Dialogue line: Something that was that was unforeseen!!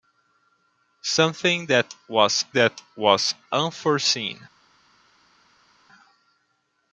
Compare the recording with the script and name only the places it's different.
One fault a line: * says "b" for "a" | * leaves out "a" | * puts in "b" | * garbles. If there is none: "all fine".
all fine